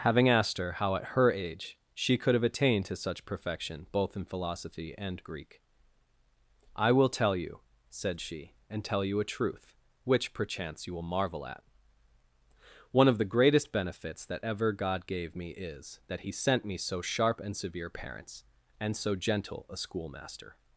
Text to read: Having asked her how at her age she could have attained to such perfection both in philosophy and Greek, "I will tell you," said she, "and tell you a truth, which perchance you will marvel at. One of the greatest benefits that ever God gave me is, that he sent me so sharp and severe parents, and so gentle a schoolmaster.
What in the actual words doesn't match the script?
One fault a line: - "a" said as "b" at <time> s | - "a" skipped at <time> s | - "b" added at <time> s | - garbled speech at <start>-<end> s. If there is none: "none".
none